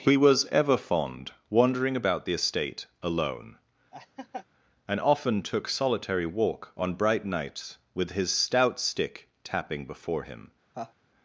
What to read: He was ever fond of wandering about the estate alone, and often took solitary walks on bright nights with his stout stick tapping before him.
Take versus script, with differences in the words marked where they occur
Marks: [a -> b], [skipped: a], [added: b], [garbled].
He was ever fond [skipped: of] wandering about the estate alone, and often took solitary [walks -> walk] on bright nights with his stout stick tapping before him.